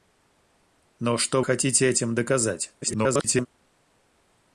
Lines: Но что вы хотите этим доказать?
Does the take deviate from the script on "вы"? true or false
true